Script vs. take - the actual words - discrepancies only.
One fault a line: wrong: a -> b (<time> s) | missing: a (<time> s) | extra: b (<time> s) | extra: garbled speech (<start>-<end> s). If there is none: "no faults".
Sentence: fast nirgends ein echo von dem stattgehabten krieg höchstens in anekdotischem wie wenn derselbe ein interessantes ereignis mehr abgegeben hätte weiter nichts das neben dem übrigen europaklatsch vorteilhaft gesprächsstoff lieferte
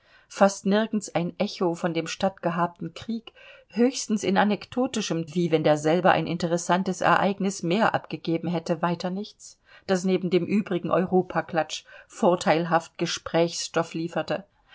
no faults